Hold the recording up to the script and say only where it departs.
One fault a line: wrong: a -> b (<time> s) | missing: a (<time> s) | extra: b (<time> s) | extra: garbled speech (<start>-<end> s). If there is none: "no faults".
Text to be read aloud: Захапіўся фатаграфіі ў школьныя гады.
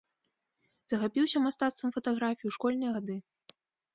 extra: мастацтвам (1.4 s)